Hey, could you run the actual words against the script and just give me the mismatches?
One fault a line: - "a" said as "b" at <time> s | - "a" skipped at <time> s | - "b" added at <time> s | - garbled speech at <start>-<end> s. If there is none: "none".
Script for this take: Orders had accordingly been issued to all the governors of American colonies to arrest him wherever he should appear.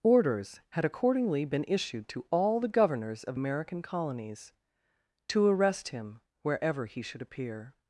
none